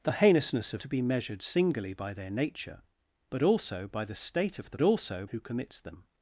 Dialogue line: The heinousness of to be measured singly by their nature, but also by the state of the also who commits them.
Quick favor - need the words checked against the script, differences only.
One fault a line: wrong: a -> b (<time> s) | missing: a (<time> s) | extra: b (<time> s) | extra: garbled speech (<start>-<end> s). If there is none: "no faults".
no faults